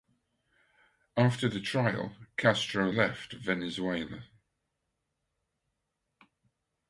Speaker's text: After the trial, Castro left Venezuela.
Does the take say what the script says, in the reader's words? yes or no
yes